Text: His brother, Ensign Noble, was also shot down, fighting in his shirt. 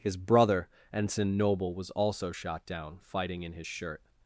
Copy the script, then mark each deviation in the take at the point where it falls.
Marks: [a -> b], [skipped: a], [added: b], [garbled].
His brother, Ensign Noble, was also shot down, fighting in his shirt.